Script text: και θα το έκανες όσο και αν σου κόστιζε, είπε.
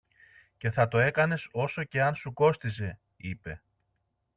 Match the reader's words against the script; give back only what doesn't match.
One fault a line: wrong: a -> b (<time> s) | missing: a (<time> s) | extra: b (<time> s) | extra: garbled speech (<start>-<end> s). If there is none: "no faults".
no faults